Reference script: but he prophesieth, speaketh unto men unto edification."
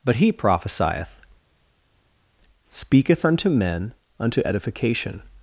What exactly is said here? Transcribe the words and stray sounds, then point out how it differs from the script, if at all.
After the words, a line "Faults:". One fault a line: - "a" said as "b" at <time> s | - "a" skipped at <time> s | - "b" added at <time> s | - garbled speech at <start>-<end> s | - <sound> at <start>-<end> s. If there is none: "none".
but he prophesieth, speaketh unto men unto edification."
Faults:
none